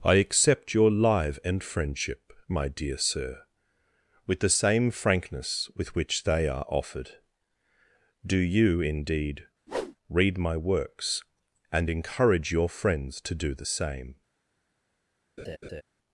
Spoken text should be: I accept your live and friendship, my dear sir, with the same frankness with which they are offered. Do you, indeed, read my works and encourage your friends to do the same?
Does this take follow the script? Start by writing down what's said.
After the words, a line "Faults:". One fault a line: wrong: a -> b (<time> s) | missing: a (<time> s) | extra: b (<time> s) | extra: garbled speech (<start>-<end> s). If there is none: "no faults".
I accept your live and friendship, my dear sir, with the same frankness with which they are offered. Do you, indeed, read my works and encourage your friends to do the same?
Faults:
no faults